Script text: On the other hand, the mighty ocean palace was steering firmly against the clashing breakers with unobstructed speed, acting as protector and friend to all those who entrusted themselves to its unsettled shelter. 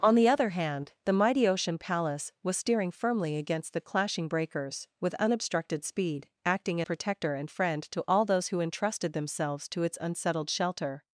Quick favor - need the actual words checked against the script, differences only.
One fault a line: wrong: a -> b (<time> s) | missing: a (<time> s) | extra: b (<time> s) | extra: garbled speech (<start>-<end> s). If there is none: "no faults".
missing: as (6.8 s)